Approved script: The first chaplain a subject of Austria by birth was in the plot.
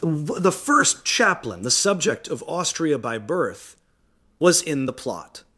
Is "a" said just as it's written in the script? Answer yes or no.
no